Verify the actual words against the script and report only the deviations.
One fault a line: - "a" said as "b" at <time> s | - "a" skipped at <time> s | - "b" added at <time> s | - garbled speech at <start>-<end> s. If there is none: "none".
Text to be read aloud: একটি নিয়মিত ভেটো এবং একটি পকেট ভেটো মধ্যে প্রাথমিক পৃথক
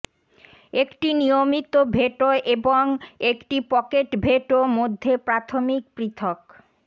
none